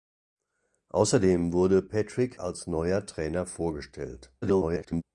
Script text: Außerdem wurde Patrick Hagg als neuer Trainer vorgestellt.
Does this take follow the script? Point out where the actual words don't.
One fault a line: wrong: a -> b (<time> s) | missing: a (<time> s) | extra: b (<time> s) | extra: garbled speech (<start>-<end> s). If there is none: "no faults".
missing: Hagg (2.4 s)
extra: garbled speech (4.4-5.0 s)